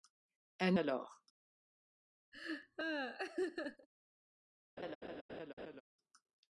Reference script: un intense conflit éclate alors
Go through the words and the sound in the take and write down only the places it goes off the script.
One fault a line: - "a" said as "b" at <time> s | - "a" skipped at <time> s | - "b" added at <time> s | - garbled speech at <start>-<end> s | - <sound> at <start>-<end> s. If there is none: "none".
- "intense conflit éclate" skipped at 0.8 s
- laugh at 2.3-3.9 s
- laugh at 4.8-5.8 s